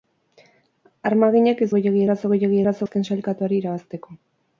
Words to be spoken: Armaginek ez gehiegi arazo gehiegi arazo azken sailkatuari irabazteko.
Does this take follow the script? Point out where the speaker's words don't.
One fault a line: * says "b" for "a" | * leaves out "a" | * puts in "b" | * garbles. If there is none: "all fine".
all fine